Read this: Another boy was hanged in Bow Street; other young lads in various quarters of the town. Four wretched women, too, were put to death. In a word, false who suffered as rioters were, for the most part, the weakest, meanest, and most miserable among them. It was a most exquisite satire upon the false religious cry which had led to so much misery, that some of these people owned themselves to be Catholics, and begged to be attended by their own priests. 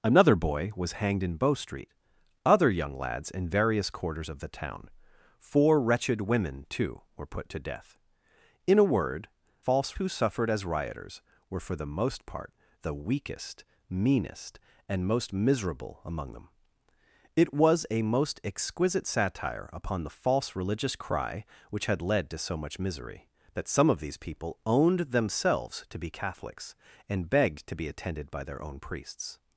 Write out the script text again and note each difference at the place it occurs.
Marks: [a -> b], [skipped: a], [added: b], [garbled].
Another boy was hanged in Bow Street; other young lads in various quarters of the town. Four wretched women, too, were put to death. In a word, false who suffered as rioters were, for the most part, the weakest, meanest, and most miserable among them. It was a most exquisite satire upon the false religious cry which had led to so much misery, that some of these people owned themselves to be Catholics, and begged to be attended by their own priests.